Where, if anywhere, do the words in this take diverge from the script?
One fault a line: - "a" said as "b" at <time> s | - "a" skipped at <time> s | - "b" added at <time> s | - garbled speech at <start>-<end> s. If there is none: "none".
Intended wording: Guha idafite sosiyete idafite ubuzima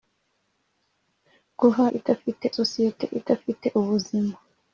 none